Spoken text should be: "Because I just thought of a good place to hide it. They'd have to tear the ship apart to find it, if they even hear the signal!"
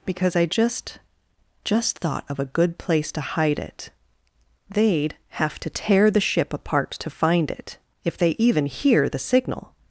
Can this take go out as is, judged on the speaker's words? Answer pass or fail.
fail